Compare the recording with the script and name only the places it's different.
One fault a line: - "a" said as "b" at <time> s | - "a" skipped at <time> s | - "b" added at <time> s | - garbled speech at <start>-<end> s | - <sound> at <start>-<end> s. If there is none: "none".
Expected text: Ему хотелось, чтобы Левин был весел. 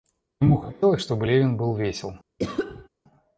- cough at 2.4-2.9 s